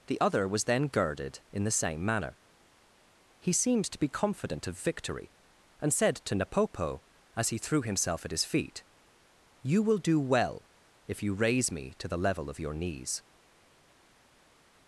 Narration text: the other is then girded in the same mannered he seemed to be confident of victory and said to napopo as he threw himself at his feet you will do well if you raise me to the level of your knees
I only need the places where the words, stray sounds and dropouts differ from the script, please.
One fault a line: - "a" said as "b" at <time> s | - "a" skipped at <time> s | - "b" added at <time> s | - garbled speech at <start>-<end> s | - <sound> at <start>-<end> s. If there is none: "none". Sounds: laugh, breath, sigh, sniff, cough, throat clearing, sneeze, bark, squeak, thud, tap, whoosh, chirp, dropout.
- "is" said as "was" at 0.5 s
- "mannered" said as "manner" at 2.0 s